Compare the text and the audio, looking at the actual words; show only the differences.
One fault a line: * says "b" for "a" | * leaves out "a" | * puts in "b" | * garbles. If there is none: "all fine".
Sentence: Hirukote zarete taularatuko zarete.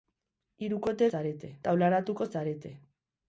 all fine